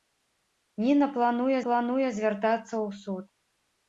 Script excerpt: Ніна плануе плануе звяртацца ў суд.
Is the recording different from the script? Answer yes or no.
no